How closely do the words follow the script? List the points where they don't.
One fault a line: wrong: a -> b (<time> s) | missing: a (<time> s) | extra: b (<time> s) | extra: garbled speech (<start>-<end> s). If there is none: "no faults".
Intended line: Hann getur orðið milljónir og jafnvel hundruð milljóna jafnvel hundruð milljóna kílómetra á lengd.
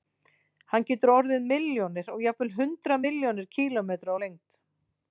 missing: jafnvel hundruð milljóna (3.5 s)